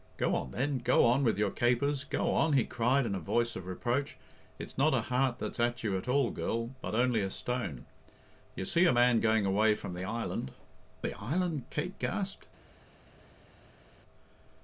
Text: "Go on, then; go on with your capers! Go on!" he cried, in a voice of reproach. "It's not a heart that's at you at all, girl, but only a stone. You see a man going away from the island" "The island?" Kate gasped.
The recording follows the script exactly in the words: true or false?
true